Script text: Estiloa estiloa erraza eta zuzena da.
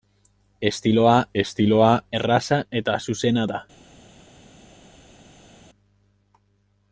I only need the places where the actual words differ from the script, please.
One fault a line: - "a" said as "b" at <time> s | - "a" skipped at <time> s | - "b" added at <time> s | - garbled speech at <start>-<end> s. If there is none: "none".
none